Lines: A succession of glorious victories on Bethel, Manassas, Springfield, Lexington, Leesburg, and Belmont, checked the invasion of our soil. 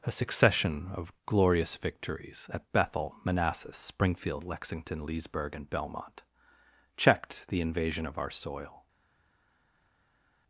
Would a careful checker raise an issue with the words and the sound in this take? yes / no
yes